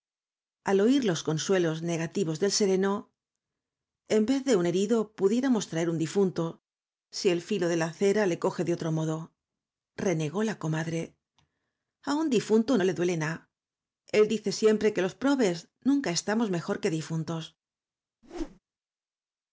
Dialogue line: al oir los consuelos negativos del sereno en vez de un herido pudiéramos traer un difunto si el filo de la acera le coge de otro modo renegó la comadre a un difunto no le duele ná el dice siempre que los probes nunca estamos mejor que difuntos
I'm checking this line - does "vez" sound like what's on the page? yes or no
yes